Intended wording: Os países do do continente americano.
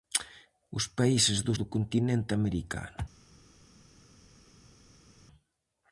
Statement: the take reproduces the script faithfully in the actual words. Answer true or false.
true